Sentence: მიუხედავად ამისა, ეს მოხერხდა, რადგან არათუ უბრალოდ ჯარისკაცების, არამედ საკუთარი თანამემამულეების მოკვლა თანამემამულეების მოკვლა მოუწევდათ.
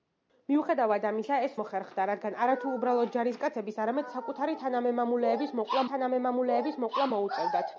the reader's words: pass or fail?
pass